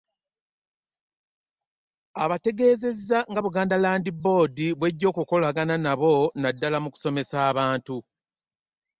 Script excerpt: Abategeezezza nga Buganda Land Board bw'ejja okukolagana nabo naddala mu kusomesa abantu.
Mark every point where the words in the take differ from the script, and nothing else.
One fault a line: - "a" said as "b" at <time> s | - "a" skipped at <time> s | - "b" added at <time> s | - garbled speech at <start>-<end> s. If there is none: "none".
none